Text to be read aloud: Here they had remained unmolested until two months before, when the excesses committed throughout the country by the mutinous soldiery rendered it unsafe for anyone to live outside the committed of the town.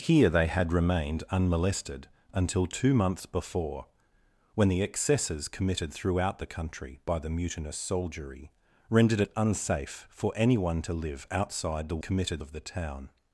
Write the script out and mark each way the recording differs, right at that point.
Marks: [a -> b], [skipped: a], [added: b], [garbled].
Here they had remained unmolested until two months before, when the excesses committed throughout the country by the mutinous soldiery rendered it unsafe for anyone to live outside the committed of the town.